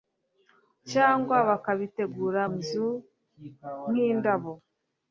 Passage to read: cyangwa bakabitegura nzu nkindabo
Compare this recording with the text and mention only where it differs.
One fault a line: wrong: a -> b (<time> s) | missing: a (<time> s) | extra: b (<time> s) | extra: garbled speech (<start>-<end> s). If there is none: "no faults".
no faults